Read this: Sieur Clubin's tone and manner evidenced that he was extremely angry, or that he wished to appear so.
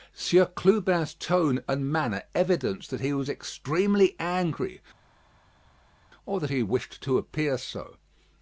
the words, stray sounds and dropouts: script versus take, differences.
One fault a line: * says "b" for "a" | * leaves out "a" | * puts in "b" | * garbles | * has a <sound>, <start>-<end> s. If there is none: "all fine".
all fine